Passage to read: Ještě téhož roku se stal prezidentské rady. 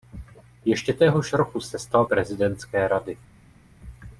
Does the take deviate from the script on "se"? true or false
false